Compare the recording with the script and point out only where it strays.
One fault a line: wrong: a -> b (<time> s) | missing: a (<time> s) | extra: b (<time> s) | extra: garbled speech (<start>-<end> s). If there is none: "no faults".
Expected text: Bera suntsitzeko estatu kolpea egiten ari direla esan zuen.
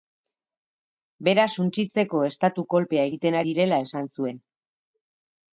missing: ari (3.4 s)